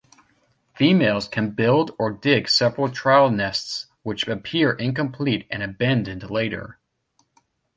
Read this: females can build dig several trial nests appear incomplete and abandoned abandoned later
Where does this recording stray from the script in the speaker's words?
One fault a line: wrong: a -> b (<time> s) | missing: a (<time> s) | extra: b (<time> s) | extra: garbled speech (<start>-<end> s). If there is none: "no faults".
extra: or (2.0 s)
extra: which (4.0 s)
missing: abandoned (6.3 s)